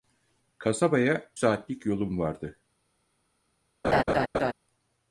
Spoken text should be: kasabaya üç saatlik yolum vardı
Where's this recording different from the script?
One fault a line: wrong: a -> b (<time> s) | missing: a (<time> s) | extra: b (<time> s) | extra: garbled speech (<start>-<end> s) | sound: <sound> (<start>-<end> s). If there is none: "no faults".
missing: üç (1.3 s)
sound: laugh (3.8-4.5 s)